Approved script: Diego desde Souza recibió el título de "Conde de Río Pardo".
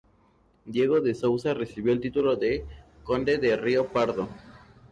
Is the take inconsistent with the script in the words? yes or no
yes